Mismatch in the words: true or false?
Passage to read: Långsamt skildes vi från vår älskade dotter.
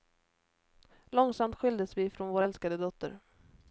false